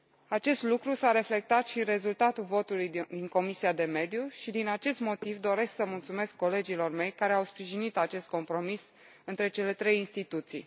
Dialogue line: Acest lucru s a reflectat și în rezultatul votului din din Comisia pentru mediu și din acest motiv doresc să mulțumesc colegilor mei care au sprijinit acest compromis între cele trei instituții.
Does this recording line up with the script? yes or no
no